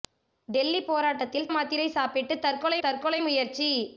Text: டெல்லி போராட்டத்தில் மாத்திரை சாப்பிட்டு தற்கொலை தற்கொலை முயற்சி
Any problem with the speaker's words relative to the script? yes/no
no